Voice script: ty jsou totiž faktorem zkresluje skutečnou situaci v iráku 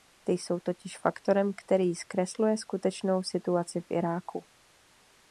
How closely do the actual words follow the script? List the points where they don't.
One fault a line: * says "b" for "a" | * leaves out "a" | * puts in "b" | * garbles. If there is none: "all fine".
* puts in "který"